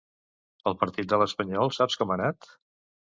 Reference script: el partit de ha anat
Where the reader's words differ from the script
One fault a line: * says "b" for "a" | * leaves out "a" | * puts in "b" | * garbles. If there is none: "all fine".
* puts in "l'espanyol saps com"